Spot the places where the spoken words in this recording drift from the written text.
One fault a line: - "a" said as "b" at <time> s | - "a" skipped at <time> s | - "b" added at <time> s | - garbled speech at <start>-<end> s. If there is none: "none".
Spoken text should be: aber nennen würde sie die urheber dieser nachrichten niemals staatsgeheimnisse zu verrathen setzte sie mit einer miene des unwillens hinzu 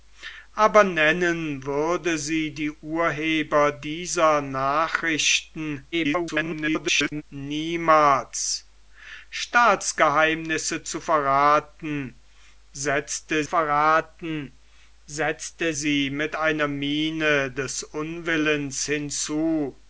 - garbled speech at 5.9-7.2 s
- "verrathen setzte" added at 13.4 s